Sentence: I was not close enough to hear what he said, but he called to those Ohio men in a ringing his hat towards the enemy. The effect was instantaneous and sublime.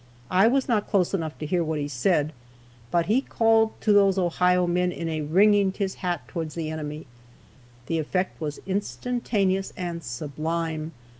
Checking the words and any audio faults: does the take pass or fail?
pass